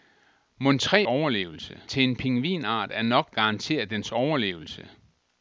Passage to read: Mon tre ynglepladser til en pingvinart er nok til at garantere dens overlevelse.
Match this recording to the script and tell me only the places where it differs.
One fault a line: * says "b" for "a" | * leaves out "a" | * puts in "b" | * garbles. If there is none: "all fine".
* says "overlevelse" for "ynglepladser"
* leaves out "til at"